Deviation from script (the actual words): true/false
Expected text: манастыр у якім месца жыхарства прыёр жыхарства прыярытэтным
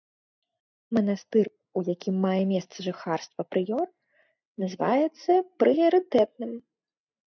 true